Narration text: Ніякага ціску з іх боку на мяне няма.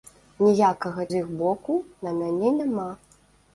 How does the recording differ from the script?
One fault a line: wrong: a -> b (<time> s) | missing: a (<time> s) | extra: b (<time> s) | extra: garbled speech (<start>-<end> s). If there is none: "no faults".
missing: ціску (1.1 s)